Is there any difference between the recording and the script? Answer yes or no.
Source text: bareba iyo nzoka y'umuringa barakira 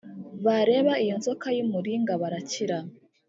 no